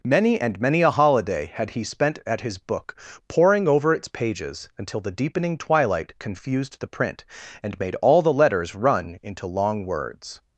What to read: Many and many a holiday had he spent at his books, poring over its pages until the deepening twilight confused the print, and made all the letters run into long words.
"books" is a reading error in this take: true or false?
true